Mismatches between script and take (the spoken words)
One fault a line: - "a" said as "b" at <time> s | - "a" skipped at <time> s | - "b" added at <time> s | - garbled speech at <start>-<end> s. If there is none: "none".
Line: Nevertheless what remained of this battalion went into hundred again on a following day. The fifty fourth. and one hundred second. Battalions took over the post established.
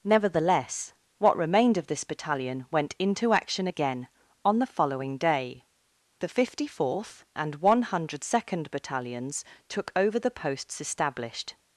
- "hundred" said as "action" at 3.3 s
- "a" said as "the" at 4.6 s
- "post" said as "posts" at 10.3 s